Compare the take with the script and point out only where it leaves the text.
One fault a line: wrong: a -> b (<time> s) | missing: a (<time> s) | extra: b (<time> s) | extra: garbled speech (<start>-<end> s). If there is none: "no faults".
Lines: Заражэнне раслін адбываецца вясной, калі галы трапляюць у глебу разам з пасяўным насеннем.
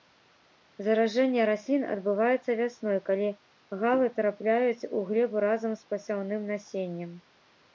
no faults